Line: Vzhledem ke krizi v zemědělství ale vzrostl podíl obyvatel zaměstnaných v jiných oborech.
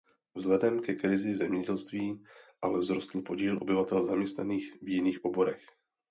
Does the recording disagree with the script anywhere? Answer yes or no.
no